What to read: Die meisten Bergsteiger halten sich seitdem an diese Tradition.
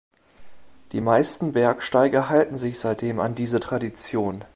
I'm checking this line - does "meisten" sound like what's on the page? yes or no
yes